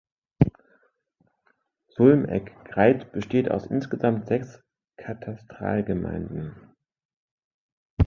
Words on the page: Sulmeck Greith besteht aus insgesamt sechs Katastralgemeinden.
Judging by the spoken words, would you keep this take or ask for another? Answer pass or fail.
pass